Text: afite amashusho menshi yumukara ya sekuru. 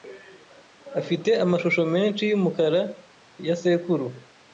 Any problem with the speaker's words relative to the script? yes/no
no